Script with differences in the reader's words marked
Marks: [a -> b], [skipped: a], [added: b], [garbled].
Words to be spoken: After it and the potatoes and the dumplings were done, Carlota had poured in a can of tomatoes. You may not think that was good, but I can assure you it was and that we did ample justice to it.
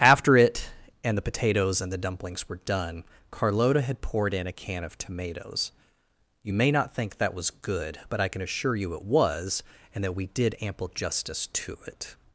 After it and the potatoes and the dumplings were done, Carlota had poured in a can of tomatoes. You may not think that was good, but I can assure you it was and that we did ample justice to it.